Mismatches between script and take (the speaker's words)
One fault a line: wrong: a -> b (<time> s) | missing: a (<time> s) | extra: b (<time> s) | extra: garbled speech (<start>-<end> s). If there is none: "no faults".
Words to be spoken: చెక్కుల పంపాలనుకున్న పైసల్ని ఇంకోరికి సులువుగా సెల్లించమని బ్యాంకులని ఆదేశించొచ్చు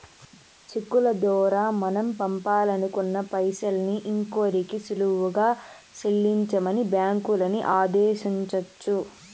extra: దోరా మనం (1.2 s)